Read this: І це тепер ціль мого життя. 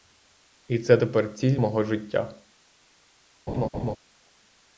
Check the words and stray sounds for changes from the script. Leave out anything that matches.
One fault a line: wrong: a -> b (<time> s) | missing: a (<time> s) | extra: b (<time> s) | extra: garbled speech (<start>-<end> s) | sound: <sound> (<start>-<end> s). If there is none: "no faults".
sound: laugh (3.5-4.0 s)